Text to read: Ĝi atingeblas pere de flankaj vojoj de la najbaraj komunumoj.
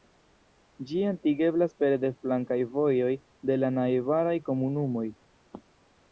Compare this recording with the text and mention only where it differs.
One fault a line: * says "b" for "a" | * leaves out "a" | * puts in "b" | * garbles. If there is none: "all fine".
all fine